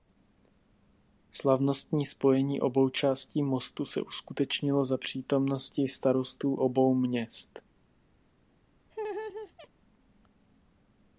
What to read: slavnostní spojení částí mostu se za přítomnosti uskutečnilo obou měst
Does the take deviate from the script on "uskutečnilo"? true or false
true